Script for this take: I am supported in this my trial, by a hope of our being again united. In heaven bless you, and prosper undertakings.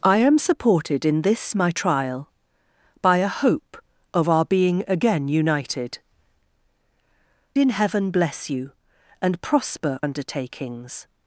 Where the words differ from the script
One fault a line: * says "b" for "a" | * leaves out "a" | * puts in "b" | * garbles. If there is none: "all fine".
all fine